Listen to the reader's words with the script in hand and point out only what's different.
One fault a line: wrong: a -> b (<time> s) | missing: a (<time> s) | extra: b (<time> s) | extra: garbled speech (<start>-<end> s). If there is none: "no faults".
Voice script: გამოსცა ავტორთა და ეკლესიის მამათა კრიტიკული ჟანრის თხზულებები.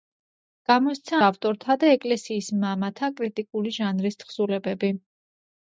no faults